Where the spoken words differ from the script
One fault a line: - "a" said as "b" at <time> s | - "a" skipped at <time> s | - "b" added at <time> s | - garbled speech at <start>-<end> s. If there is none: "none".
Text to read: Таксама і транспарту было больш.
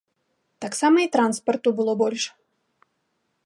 none